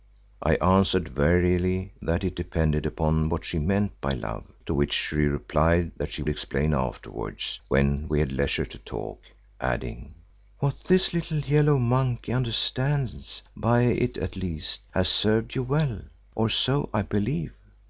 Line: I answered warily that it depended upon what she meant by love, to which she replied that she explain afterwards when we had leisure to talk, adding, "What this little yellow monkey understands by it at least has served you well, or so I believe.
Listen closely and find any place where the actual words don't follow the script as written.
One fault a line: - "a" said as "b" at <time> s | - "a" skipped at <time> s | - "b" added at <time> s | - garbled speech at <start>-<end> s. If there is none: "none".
none